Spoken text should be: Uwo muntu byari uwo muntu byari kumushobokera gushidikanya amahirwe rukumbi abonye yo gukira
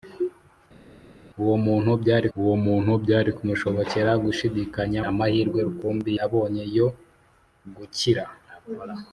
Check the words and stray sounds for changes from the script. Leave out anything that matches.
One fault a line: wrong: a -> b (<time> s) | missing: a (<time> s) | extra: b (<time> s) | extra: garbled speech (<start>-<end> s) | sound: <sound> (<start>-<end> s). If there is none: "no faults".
no faults